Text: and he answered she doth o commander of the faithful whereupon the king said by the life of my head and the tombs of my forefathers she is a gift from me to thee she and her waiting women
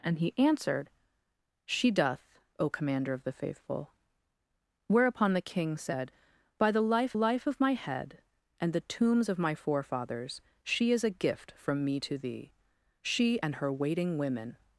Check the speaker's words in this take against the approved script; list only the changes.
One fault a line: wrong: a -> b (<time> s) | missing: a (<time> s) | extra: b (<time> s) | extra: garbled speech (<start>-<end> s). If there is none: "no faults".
extra: life (7.1 s)